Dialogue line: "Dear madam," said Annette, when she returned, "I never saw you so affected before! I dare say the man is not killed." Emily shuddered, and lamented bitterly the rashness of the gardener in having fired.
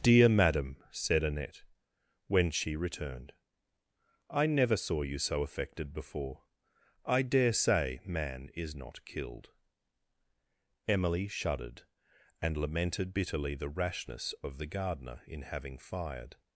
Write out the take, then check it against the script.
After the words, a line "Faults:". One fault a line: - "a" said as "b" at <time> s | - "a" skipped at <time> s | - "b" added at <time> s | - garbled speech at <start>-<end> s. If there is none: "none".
"Dear madam," said Annette, when she returned, "I never saw you so affected before! I dare say man is not killed." Emily shuddered, and lamented bitterly the rashness of the gardener in having fired.
Faults:
- "the" skipped at 8.0 s